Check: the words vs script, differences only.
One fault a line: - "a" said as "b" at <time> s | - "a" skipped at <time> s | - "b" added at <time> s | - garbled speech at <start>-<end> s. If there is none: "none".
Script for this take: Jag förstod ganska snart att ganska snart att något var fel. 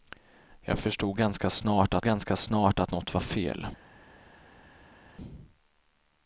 none